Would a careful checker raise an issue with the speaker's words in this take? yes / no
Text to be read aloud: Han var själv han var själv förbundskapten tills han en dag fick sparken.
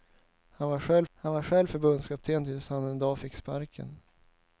no